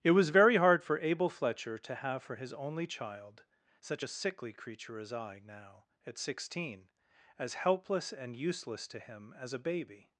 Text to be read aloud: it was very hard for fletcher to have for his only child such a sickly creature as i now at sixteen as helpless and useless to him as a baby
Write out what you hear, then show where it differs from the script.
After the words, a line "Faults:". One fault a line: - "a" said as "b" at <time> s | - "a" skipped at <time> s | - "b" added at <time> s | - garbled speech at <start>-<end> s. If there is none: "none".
it was very hard for abel fletcher to have for his only child such a sickly creature as i now at sixteen as helpless and useless to him as a baby
Faults:
- "abel" added at 1.0 s